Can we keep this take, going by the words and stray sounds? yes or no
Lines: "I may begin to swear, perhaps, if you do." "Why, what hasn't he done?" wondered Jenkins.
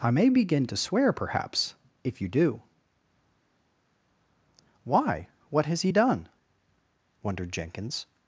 no